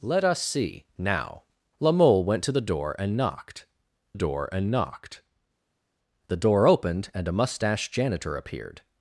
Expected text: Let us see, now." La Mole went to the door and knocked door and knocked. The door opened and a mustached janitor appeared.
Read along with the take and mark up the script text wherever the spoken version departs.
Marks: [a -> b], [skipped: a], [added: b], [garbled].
Let us see, now." La Mole went to the door and knocked door and knocked. The door opened and a mustached janitor appeared.